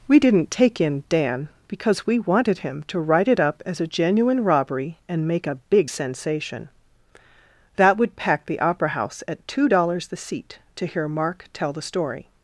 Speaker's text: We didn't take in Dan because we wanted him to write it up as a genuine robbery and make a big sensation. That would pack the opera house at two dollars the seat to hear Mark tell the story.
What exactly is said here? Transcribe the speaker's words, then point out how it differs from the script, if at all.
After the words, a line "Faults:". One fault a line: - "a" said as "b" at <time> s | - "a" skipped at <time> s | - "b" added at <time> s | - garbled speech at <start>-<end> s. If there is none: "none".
We didn't take in Dan because we wanted him to write it up as a genuine robbery and make a big sensation. That would pack the opera house at two dollars the seat to hear Mark tell the story.
Faults:
none